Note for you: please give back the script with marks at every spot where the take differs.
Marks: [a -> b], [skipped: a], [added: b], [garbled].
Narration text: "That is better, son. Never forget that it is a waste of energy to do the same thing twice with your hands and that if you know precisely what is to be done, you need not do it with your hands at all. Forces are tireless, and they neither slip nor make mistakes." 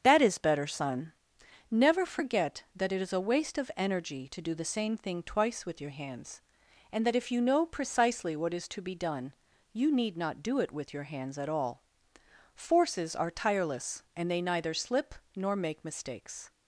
"That is better, son. Never forget that it is a waste of energy to do the same thing twice with your hands and that if you know precisely what is to be done, you need not do it with your hands at all. Forces are tireless, and they neither slip nor make mistakes."